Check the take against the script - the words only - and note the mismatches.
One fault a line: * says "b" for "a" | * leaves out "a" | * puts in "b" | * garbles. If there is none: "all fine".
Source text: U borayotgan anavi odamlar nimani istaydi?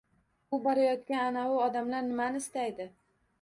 all fine